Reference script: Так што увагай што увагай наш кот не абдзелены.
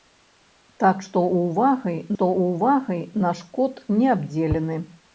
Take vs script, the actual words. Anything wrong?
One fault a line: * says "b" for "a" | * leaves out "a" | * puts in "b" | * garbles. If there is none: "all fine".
all fine